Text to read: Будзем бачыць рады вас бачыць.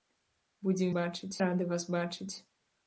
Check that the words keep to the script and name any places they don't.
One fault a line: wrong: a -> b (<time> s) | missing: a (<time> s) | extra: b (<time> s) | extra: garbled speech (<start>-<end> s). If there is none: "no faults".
no faults